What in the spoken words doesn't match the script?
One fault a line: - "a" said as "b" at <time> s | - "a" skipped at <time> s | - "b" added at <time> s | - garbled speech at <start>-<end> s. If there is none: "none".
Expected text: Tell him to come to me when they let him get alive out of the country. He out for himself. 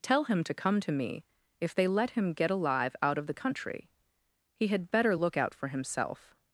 - "when" said as "if" at 1.6 s
- "had better look" added at 4.7 s